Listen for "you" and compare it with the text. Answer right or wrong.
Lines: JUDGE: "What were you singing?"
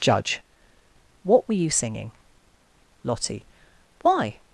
right